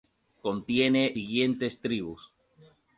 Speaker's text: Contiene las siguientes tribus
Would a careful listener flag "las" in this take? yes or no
yes